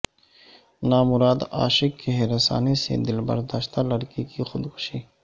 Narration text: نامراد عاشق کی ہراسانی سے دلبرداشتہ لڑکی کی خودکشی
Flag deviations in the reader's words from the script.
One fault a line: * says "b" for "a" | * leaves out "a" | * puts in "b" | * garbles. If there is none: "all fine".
all fine